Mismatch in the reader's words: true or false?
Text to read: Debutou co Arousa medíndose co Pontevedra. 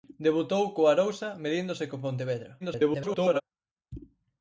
true